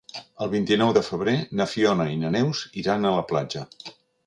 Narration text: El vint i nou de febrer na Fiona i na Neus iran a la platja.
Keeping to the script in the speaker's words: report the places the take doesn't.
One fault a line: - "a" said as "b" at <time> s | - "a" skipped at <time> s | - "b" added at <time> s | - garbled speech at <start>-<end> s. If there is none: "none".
none